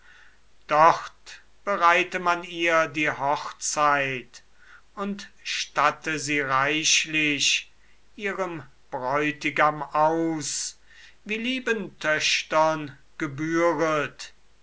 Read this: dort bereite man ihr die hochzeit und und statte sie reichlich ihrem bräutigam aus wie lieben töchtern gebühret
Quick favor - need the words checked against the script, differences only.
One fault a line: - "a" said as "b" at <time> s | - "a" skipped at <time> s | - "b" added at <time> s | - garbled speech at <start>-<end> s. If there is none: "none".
- "und" skipped at 5.3 s